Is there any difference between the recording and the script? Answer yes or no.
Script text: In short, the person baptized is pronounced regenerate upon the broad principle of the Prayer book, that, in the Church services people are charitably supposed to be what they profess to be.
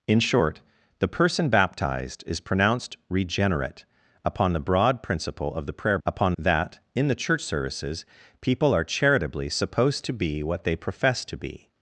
yes